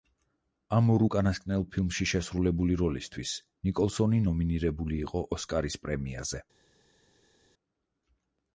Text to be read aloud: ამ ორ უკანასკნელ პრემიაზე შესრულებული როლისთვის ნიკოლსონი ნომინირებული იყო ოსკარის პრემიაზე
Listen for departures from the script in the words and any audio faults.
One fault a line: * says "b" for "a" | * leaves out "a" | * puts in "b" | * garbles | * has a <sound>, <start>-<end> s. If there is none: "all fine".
* says "ფილმში" for "პრემიაზე"